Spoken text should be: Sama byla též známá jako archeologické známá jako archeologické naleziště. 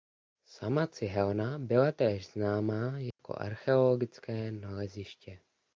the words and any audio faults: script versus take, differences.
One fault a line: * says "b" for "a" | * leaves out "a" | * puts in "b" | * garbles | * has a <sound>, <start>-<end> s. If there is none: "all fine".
* puts in "cihelna"
* has a dropout, 3.1-3.2 s
* leaves out "známá jako archeologické"